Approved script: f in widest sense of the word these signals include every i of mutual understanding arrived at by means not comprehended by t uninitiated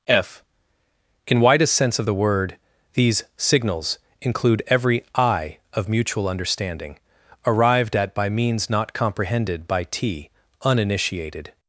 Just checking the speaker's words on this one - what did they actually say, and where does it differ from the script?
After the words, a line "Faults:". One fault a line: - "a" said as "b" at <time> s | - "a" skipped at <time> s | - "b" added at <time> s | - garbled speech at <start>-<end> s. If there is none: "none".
f in widest sense of the word these signals include every i of mutual understanding arrived at by means not comprehended by t uninitiated
Faults:
none